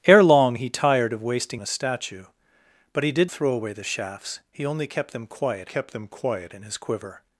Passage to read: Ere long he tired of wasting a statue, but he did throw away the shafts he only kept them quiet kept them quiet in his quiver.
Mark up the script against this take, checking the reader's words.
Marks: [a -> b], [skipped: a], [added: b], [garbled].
Ere long he tired of wasting a statue, but he did throw away the shafts he only kept them quiet kept them quiet in his quiver.